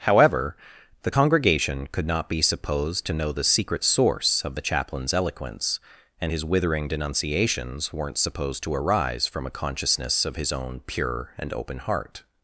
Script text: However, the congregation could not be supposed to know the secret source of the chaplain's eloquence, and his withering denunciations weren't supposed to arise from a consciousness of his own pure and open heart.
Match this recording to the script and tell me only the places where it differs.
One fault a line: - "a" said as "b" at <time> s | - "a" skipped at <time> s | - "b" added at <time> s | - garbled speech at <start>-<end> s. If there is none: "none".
none